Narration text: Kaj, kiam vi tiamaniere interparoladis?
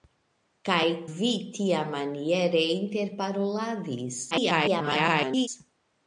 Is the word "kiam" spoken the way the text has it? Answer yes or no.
no